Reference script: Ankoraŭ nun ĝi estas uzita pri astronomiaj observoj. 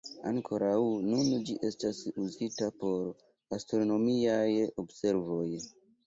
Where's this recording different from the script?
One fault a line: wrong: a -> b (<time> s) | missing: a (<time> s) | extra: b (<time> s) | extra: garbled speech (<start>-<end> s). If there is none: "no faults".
wrong: pri -> por (2.8 s)